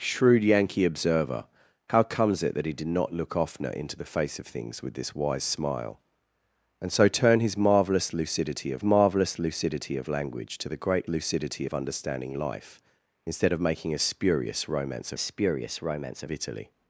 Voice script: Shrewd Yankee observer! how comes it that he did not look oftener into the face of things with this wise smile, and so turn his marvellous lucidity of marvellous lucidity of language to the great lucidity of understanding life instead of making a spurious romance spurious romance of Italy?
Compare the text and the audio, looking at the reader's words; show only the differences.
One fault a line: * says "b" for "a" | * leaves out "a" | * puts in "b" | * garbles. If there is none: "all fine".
all fine